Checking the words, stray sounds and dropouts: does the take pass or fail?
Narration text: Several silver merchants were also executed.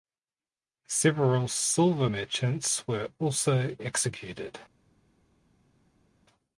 pass